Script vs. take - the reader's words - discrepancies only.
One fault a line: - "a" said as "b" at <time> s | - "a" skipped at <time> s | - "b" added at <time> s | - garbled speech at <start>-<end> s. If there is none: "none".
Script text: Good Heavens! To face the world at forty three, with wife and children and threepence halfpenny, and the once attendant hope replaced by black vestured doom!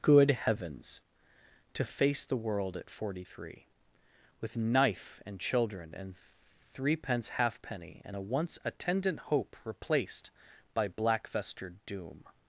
- "wife" said as "knife" at 4.6 s
- "the" said as "a" at 8.1 s